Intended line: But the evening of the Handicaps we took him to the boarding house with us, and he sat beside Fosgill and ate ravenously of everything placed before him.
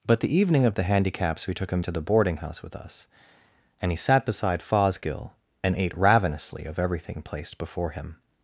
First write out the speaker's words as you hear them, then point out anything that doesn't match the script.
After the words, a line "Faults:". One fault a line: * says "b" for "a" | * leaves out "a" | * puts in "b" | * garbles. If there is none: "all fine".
But the evening of the Handicaps we took him to the boarding house with us, and he sat beside Fosgill and ate ravenously of everything placed before him.
Faults:
all fine